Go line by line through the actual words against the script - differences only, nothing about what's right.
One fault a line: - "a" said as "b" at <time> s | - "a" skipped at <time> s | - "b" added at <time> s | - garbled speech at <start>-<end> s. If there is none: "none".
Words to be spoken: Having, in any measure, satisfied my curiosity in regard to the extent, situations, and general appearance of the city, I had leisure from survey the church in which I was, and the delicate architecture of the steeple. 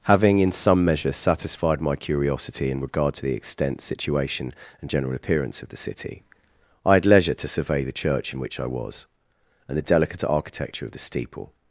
- "any" said as "some" at 0.5 s
- "situations" said as "situation" at 3.8 s
- "from" said as "to" at 7.3 s